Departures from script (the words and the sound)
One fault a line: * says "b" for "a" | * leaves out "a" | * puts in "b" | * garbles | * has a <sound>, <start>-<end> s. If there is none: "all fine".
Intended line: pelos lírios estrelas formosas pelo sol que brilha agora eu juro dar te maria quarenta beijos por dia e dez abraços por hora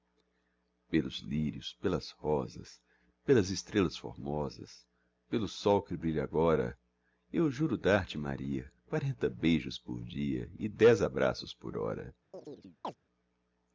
* puts in "pelas rosas pelas"
* has a chirp, 12.3-13.0 s